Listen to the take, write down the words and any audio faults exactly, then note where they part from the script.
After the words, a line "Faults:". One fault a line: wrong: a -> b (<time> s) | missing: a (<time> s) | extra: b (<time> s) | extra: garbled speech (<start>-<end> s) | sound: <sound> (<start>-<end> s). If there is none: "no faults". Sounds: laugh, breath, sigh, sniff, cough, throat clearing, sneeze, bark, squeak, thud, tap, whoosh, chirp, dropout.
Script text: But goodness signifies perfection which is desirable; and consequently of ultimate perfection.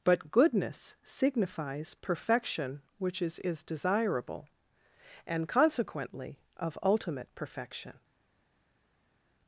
But goodness signifies perfection which is is desirable; and consequently of ultimate perfection.
Faults:
extra: is (3.4 s)